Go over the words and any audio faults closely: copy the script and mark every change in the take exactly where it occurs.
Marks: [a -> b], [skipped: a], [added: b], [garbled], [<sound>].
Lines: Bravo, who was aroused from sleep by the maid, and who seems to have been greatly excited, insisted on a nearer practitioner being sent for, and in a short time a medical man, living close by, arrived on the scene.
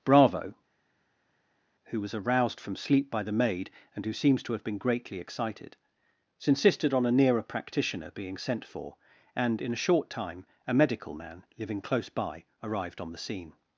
Bravo, who was aroused from sleep by the maid, and who seems to have been greatly excited, insisted on a nearer practitioner being sent for, and in a short time a medical man, living close by, arrived on the scene.